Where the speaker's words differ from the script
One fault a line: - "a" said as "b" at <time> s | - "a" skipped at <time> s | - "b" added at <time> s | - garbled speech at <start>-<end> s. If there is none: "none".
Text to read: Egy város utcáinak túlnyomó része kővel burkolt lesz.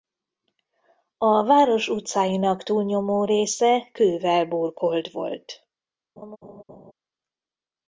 - "Egy" said as "A" at 1.2 s
- "lesz" said as "volt" at 5.1 s